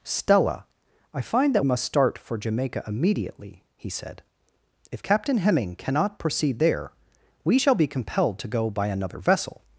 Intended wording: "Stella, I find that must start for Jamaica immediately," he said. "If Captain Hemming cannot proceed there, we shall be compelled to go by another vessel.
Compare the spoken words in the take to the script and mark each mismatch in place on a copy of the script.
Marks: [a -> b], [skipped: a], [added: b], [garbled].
"Stella, I find that must start for Jamaica immediately," he said. "If Captain Hemming cannot proceed there, we shall be compelled to go by another vessel.